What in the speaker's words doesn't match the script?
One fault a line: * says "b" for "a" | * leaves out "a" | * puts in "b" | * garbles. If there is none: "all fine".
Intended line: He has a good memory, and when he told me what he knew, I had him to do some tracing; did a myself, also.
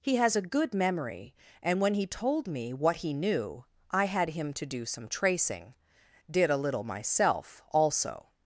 * puts in "little"